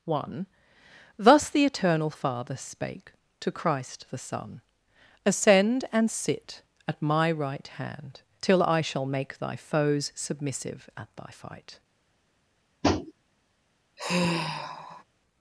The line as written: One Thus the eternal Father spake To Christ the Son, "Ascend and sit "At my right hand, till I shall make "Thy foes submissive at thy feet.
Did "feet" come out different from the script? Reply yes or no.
yes